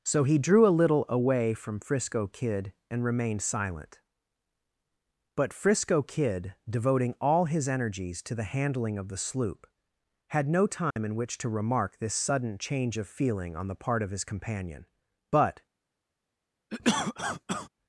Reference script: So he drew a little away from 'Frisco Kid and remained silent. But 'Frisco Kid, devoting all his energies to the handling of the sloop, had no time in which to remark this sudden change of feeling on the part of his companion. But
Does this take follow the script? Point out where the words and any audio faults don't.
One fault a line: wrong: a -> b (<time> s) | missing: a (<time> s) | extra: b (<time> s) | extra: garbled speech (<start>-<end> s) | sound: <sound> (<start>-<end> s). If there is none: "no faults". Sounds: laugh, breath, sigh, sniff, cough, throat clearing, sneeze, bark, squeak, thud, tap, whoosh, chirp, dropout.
sound: dropout (10.9-11.0 s)
sound: cough (16.7-17.7 s)